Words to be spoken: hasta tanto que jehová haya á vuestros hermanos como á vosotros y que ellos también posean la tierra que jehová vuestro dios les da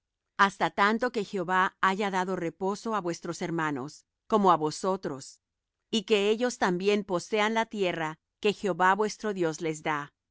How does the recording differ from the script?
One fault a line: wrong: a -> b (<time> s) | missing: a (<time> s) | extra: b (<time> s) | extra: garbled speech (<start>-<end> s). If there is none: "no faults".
extra: dado reposo (2.2 s)